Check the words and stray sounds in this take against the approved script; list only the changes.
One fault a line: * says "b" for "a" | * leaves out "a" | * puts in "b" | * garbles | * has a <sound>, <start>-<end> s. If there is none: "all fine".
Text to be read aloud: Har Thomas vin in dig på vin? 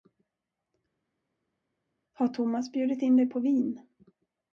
* says "bjudit" for "vin"